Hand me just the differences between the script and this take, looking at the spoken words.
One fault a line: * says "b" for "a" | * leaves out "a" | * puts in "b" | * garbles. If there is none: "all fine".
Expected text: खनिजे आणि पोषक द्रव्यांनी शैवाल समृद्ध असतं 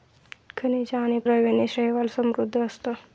* leaves out "पोषक"